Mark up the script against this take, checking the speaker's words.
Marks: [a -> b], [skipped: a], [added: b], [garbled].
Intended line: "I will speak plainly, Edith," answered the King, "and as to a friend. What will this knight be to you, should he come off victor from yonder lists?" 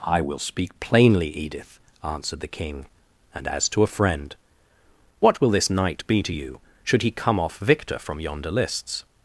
"I will speak plainly, Edith," answered the King, "and as to a friend. What will this knight be to you, should he come off victor from yonder lists?"